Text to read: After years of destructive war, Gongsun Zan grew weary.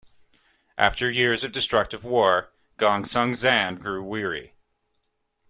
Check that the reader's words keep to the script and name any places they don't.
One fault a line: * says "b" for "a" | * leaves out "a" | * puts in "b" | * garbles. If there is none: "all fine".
all fine